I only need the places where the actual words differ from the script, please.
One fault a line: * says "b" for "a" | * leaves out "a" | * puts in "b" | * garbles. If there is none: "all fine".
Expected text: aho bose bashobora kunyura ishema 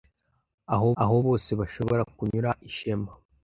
* puts in "aho"